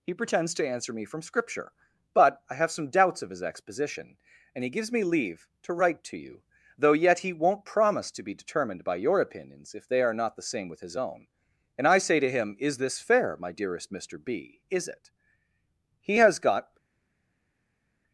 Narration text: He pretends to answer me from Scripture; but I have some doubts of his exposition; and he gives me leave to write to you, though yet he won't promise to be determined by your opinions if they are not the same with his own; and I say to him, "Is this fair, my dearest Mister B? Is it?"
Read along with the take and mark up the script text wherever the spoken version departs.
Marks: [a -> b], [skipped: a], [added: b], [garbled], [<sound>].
He pretends to answer me from Scripture; but I have some doubts of his exposition; and he gives me leave to write to you, though yet he won't promise to be determined by your opinions if they are not the same with his own; and I say to him, "Is this fair, my dearest Mister B? Is it?" [added: He has got]